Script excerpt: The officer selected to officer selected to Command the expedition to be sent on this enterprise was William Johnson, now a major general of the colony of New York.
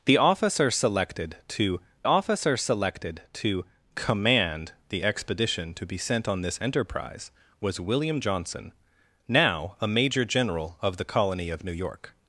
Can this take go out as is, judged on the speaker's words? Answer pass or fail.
pass